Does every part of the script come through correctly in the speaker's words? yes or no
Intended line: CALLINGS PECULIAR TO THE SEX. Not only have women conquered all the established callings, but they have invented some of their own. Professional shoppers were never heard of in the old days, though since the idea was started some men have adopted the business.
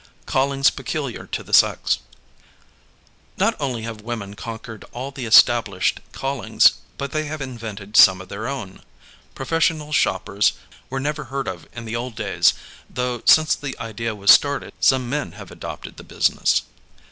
yes